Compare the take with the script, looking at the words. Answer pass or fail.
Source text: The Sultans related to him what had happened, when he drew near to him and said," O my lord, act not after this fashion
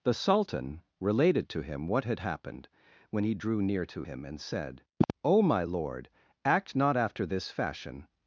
fail